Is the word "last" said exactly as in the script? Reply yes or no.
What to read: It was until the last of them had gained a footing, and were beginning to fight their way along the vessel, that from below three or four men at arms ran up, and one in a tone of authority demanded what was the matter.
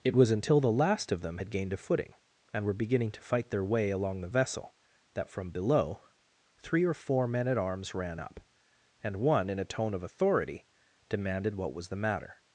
yes